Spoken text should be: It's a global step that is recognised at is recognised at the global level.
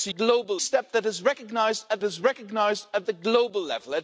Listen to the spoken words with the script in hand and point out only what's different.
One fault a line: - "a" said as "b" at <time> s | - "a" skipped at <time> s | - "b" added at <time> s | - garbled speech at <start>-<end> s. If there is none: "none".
none